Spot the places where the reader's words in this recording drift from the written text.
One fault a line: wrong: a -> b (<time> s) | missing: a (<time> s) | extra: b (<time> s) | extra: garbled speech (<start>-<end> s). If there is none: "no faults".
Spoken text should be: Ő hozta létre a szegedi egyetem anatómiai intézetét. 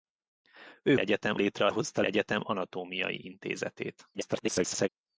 wrong: hozta -> egyetem (1.0 s)
wrong: szegedi -> hozta (1.7 s)
extra: garbled speech (4.1-4.9 s)